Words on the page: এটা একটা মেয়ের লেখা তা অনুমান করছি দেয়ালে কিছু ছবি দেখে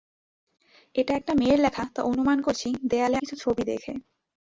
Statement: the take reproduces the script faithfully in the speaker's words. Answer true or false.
true